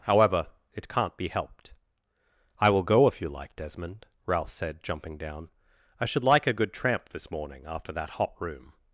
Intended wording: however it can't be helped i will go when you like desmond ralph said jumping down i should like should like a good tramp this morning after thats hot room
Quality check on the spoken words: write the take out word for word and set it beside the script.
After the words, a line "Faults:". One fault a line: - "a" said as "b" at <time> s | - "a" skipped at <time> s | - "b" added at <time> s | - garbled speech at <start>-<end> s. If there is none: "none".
however it can't be helped i will go if you like desmond ralph said jumping down i should like a good tramp this morning after that hot room
Faults:
- "when" said as "if" at 3.1 s
- "should like" skipped at 6.5 s
- "thats" said as "that" at 7.9 s